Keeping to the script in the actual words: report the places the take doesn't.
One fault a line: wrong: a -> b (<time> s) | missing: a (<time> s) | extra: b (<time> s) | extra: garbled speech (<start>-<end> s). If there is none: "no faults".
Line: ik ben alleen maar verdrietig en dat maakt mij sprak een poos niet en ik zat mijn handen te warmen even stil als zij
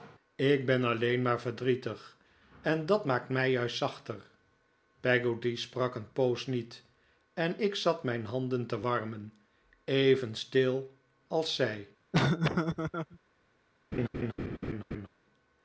extra: juist zachter peggotty (3.5 s)